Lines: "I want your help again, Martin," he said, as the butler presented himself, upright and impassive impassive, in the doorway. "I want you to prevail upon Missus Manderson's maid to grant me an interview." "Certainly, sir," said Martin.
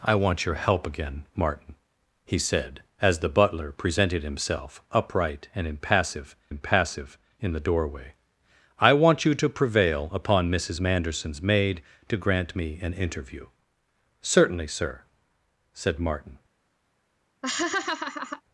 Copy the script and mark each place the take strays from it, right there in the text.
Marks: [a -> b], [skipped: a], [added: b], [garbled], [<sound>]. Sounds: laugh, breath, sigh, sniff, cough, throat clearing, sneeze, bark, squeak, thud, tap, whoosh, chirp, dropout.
"I want your help again, Martin," he said, as the butler presented himself, upright and impassive impassive, in the doorway. "I want you to prevail upon Missus Manderson's maid to grant me an interview." "Certainly, sir," said Martin. [laugh]